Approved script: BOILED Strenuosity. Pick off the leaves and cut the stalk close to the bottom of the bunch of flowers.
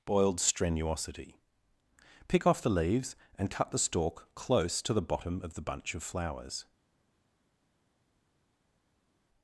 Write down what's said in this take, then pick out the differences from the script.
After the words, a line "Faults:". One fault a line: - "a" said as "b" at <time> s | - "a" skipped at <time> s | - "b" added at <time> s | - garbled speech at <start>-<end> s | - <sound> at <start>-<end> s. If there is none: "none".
BOILED Strenuosity. Pick off the leaves and cut the stalk close to the bottom of the bunch of flowers.
Faults:
none